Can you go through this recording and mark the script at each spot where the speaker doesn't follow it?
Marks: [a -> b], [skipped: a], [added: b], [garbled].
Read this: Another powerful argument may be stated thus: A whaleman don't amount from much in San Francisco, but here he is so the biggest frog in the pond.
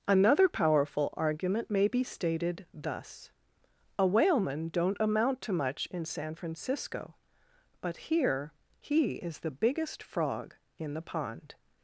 Another powerful argument may be stated thus: A whaleman don't amount [from -> to] much in San Francisco, but here he is [skipped: so] the biggest frog in the pond.